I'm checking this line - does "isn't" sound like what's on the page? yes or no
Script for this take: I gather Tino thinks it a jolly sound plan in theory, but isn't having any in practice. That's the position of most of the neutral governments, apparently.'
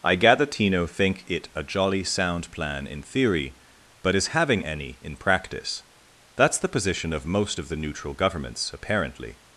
no